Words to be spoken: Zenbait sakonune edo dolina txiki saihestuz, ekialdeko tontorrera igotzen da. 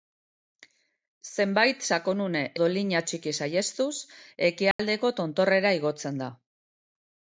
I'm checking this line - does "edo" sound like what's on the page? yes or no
no